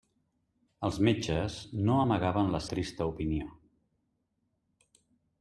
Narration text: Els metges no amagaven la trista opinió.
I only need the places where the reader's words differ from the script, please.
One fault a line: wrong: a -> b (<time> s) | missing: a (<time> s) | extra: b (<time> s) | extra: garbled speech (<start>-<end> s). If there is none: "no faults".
no faults